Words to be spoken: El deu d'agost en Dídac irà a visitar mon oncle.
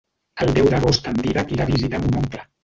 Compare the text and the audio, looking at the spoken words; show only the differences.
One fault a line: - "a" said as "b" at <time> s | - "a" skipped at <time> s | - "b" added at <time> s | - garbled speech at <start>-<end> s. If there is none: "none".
none